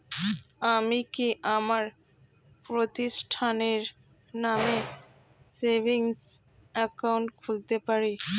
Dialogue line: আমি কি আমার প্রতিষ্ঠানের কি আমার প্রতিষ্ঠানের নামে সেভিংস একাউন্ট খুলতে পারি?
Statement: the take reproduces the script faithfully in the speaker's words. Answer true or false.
false